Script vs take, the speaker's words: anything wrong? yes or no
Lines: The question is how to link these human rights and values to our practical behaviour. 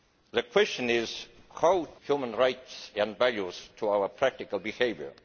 yes